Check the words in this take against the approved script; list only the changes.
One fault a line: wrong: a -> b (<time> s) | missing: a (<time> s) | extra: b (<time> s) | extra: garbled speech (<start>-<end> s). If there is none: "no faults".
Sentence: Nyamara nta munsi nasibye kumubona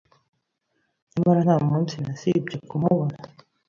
no faults